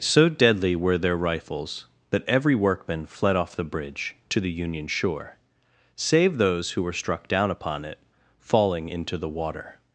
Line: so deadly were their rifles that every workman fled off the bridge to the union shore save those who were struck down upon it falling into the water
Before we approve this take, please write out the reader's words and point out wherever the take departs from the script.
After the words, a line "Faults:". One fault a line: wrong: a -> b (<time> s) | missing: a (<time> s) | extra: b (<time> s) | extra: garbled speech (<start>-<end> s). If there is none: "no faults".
so deadly were their rifles that every workman fled off the bridge to the union shore save those who were struck down upon it falling into the water
Faults:
no faults